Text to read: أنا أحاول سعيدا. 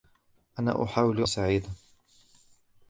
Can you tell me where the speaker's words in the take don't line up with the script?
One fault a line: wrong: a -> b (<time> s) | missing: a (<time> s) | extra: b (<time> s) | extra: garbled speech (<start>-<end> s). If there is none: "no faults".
no faults